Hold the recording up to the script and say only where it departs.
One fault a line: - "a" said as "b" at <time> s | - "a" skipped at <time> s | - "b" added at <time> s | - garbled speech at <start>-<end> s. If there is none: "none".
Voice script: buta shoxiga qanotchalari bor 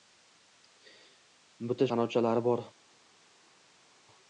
- "shoxiga" skipped at 1.9 s